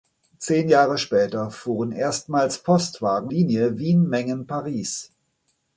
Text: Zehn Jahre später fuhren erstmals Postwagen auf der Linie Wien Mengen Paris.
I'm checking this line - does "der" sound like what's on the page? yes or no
no